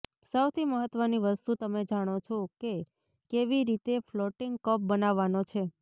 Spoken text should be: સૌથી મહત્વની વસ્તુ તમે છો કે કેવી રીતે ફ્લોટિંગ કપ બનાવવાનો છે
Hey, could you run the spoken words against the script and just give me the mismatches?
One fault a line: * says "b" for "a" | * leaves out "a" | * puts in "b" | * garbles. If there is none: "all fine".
* puts in "જાણો"